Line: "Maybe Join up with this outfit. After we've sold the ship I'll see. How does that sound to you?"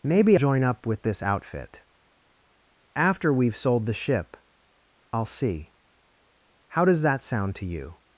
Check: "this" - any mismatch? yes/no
no